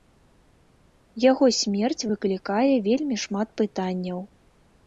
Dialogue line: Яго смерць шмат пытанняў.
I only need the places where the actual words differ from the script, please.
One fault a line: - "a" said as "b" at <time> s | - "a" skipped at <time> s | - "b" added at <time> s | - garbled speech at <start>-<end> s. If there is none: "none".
- "выклікае вельмі" added at 2.1 s